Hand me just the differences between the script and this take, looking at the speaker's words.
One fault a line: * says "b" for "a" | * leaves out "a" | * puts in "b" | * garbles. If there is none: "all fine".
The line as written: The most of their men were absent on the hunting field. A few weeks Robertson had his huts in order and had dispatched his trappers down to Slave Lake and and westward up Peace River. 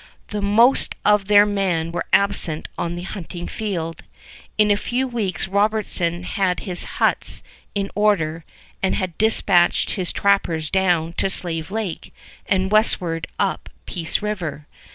* puts in "In"
* leaves out "and"